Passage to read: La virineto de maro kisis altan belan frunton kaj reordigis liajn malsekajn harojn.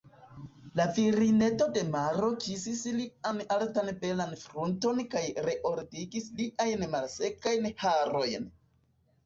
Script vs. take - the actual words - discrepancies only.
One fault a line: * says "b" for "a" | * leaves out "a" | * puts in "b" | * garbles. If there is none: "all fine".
* puts in "lian"